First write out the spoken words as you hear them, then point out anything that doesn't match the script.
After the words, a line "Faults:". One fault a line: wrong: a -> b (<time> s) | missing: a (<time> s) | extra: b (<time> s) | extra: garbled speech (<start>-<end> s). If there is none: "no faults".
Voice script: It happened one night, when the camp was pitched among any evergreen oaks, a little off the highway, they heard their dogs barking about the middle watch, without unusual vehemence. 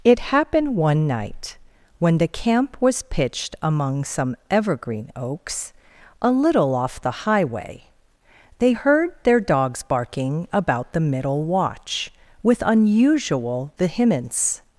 It happened one night, when the camp was pitched among some evergreen oaks, a little off the highway, they heard their dogs barking about the middle watch, with unusual vehemence.
Faults:
wrong: any -> some (4.0 s)
wrong: without -> with (12.4 s)